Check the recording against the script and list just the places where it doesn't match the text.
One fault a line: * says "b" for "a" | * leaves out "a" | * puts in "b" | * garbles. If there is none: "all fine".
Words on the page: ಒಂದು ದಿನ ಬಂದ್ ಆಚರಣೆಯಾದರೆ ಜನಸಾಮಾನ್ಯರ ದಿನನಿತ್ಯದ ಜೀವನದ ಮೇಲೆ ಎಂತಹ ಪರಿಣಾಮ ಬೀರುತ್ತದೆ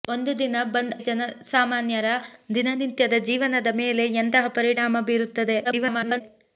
* leaves out "ಆಚರಣೆಯಾದರೆ"
* garbles